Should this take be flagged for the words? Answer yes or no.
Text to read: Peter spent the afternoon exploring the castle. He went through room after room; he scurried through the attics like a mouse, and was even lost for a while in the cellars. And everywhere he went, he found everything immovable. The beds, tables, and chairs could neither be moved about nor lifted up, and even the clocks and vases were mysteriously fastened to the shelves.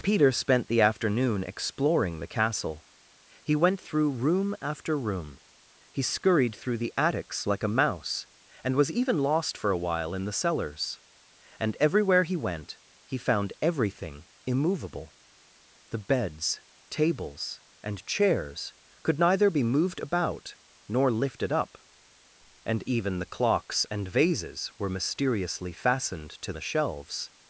no